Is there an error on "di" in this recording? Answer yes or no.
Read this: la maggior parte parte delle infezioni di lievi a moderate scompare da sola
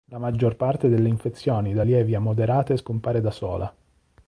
yes